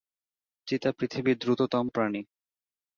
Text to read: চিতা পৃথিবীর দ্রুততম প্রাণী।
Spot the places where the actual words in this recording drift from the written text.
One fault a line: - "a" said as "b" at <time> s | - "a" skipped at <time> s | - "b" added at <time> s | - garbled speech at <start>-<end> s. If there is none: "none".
none